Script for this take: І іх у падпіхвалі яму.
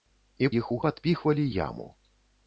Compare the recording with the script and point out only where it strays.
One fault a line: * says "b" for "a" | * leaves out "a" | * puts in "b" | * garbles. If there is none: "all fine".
all fine